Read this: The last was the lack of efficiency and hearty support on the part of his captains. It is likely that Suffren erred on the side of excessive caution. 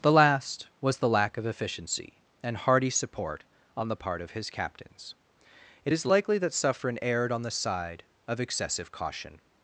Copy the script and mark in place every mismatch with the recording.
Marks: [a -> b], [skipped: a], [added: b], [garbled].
The last was the lack of efficiency and hearty support on the part of his captains. It is likely that Suffren erred on the side of excessive caution.